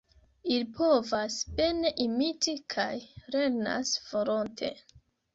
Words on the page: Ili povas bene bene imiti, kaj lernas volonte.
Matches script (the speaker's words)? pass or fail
fail